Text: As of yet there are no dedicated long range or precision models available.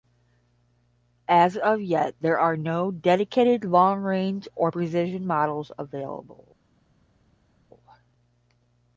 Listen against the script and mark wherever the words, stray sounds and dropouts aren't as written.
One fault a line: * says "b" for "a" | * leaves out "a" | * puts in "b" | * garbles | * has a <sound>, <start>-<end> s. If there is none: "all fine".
all fine